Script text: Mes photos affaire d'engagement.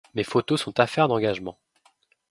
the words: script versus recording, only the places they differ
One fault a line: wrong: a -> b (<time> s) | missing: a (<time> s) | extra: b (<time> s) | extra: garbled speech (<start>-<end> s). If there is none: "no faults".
extra: sont (0.6 s)